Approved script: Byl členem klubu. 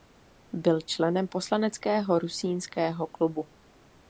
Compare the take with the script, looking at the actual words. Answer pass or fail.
fail